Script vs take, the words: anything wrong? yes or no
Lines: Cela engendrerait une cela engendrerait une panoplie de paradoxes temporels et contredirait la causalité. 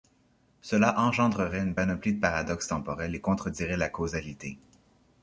yes